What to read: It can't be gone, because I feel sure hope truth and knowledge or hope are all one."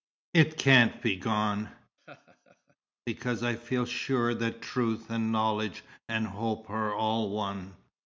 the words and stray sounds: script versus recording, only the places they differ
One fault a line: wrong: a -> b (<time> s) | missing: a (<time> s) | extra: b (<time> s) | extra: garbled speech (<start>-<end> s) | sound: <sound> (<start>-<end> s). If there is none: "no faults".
sound: laugh (2.0-2.8 s)
wrong: hope -> that (4.3 s)
wrong: or -> and (6.1 s)